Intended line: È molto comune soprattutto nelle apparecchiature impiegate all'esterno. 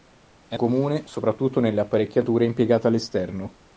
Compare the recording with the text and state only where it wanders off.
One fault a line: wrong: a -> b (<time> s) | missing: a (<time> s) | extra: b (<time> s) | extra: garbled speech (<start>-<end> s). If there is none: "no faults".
missing: molto (0.6 s)